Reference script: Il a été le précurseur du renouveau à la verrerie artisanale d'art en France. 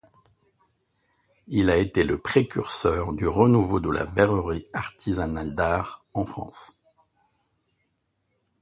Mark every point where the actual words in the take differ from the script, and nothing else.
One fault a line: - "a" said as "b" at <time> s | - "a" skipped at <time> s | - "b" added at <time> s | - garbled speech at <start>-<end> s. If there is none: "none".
- "à" said as "de" at 3.8 s